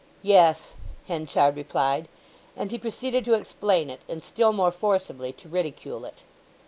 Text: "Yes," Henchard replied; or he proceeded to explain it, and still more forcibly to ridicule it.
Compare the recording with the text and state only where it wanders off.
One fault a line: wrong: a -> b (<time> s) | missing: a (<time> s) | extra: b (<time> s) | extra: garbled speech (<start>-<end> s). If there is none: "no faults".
wrong: or -> and (2.5 s)